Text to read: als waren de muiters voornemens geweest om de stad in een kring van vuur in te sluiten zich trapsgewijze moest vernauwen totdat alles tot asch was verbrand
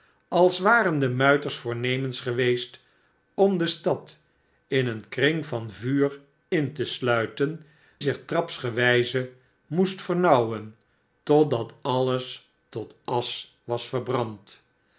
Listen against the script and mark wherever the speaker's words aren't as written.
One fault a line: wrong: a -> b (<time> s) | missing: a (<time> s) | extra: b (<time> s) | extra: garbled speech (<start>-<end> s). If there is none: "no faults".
no faults